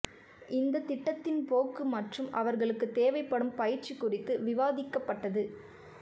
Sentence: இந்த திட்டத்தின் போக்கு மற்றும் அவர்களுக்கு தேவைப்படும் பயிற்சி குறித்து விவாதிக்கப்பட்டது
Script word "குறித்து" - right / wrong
right